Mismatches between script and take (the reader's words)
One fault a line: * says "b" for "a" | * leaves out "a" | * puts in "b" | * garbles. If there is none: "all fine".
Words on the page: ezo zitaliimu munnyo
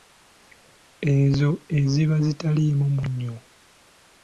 * puts in "eziba"